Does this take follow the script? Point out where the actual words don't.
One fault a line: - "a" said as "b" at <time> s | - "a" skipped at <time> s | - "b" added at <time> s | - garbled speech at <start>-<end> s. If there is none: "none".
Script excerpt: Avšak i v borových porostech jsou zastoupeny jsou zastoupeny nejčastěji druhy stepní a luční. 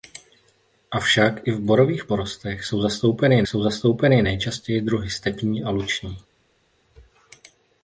none